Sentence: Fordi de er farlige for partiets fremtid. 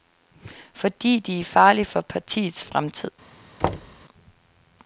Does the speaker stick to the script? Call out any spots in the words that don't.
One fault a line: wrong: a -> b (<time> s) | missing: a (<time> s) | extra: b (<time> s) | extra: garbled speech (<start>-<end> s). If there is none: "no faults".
no faults